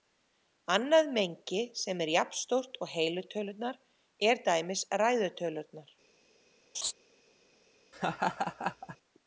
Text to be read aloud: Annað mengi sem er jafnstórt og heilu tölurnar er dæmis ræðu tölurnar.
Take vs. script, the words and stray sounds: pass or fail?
fail